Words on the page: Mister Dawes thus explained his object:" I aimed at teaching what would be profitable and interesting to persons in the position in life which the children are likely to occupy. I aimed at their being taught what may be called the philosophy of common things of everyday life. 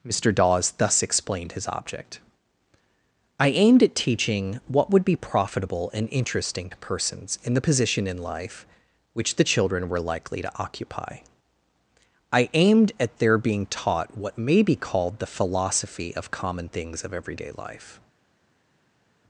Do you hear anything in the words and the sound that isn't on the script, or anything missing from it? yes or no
yes